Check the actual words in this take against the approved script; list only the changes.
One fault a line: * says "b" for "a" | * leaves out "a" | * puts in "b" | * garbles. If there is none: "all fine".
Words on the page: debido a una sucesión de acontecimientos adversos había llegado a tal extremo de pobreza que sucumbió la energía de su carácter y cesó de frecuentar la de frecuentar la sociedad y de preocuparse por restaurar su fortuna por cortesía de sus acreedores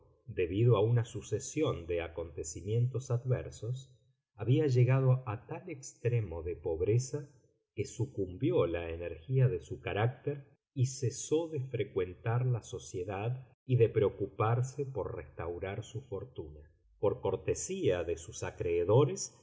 * leaves out "de frecuentar la"